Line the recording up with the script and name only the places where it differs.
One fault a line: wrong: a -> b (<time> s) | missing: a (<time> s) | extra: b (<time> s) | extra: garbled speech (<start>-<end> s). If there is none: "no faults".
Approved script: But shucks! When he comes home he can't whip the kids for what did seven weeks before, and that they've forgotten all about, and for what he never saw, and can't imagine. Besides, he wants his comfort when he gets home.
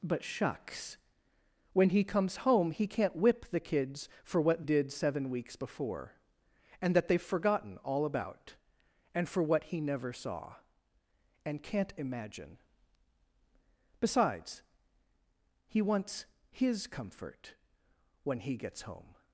no faults